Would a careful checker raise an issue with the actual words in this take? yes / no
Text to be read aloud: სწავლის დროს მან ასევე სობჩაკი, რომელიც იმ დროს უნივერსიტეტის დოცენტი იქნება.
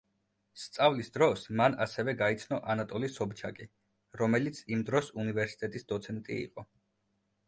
yes